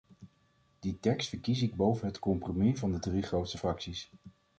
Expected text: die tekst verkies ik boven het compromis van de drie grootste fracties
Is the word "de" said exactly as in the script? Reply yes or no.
yes